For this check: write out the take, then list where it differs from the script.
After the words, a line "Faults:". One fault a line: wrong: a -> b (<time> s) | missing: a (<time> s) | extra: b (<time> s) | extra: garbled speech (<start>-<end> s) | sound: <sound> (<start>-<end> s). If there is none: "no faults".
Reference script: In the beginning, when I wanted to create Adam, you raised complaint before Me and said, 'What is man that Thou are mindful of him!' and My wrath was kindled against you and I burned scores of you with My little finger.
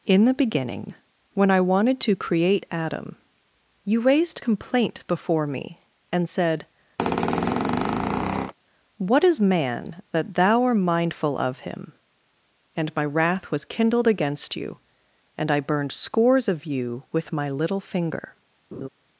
In the beginning, when I wanted to create Adam, you raised complaint before Me and said, 'What is man that Thou art mindful of him!' and My wrath was kindled against you and I burned scores of you with My little finger.
Faults:
sound: squeak (7.0-8.5 s)
wrong: are -> art (10.6 s)
sound: laugh (18.7-18.9 s)